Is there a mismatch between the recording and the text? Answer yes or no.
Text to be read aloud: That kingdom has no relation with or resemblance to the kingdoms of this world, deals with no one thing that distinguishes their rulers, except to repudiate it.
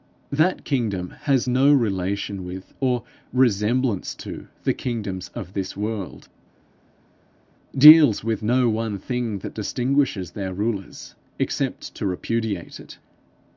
no